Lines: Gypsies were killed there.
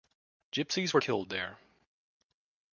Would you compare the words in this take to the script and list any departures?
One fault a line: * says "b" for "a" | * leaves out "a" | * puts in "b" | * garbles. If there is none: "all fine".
all fine